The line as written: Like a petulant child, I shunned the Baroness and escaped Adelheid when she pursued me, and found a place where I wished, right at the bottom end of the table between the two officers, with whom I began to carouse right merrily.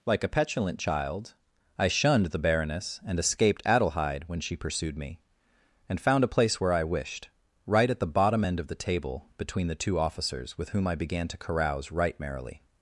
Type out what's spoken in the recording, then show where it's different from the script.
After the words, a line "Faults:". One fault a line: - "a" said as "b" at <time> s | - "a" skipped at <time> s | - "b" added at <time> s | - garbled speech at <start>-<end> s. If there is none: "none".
Like a petulant child, I shunned the Baroness and escaped Adelheid when she pursued me, and found a place where I wished, right at the bottom end of the table between the two officers, with whom I began to carouse right merrily.
Faults:
none